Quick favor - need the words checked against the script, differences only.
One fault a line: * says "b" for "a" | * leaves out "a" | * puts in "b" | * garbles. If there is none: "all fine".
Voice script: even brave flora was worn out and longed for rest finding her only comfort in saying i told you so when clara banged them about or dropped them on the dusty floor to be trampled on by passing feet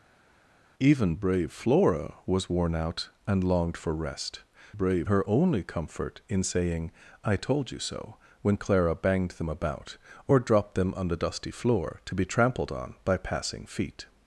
* says "brave" for "finding"